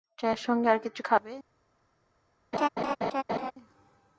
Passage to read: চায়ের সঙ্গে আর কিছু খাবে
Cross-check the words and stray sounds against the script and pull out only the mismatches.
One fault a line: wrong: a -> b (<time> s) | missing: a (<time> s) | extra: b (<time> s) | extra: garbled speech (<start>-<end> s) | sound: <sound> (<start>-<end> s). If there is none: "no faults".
sound: laugh (2.5-3.5 s)